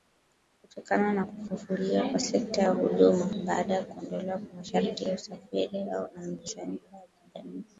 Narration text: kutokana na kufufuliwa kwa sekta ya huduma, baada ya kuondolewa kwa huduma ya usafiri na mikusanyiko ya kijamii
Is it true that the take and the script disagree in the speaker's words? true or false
true